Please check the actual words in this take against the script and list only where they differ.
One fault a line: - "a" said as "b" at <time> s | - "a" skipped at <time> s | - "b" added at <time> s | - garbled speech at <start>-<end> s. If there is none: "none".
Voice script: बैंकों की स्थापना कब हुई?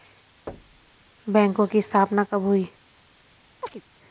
none